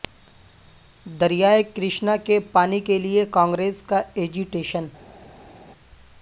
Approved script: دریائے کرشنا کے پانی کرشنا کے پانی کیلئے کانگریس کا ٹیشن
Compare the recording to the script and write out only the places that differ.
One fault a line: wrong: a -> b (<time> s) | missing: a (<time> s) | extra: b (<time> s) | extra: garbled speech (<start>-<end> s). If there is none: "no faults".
missing: کرشنا کے پانی (2.8 s)
extra: ایجی (4.2 s)